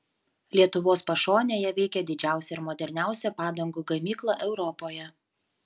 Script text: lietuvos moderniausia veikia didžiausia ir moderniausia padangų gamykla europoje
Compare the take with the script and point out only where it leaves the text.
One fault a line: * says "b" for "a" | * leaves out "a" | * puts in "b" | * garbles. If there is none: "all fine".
* says "pašonėje" for "moderniausia"